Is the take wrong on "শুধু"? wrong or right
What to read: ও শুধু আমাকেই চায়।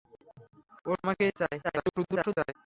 wrong